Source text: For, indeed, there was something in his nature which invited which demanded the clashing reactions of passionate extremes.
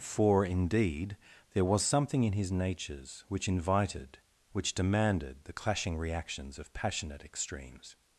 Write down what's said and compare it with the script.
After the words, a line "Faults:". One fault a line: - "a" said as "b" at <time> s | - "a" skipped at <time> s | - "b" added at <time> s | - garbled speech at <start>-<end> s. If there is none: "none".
For, indeed, there was something in his natures which invited which demanded the clashing reactions of passionate extremes.
Faults:
- "nature" said as "natures" at 2.5 s